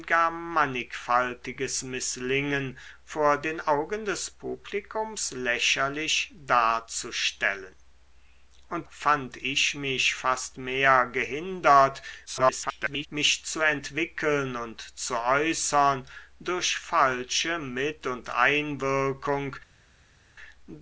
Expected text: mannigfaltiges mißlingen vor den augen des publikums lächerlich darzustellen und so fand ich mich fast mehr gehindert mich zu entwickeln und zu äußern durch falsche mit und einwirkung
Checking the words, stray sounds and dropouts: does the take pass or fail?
fail